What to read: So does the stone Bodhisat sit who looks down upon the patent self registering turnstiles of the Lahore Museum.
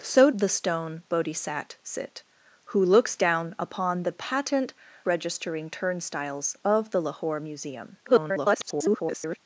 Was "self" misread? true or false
true